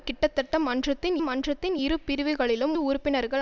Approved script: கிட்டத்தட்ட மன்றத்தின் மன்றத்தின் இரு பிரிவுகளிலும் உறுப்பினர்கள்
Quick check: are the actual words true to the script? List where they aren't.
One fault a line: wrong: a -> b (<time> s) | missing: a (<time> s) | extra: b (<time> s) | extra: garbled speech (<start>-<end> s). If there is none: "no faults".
no faults